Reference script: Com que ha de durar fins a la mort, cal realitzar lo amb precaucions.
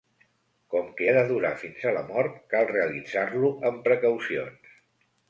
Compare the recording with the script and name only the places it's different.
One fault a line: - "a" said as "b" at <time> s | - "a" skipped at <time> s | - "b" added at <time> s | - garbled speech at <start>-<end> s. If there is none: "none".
none